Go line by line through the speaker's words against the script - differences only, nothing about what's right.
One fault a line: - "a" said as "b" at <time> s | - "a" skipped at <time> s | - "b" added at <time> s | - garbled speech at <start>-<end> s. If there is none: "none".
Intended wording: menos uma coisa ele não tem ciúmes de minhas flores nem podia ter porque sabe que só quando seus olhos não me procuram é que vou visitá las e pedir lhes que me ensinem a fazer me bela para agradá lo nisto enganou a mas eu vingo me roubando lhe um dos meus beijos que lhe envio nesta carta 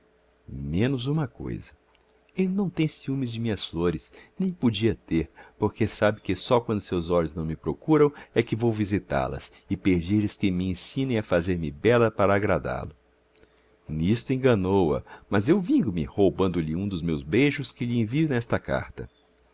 none